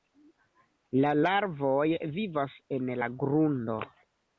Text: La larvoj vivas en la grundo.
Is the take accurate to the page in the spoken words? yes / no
yes